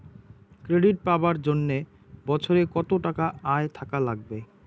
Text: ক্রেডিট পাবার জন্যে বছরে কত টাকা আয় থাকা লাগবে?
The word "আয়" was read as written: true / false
true